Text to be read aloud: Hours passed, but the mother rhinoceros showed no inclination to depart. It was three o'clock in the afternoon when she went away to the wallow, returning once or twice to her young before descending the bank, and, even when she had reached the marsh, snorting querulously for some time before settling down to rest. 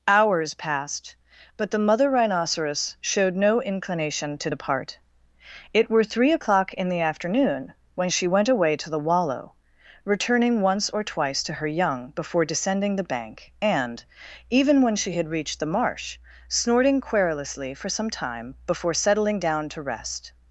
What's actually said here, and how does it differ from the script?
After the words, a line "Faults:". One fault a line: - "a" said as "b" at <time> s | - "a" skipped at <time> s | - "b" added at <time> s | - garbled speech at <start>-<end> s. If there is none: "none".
Hours passed, but the mother rhinoceros showed no inclination to depart. It were three o'clock in the afternoon when she went away to the wallow, returning once or twice to her young before descending the bank, and, even when she had reached the marsh, snorting querulously for some time before settling down to rest.
Faults:
- "was" said as "were" at 5.9 s